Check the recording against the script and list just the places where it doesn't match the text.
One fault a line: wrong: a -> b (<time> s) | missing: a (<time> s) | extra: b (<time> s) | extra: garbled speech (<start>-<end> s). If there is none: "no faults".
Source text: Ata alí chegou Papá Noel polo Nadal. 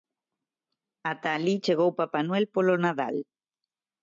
no faults